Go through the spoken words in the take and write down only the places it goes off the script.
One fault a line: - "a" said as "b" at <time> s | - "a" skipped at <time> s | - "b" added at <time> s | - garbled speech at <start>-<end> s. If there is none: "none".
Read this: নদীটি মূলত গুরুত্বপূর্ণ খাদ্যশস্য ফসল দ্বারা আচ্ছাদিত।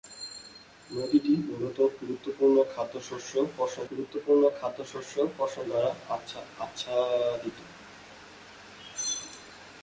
- "গুরুত্বপূর্ণ খাদ্যশস্য ফসল" added at 3.9 s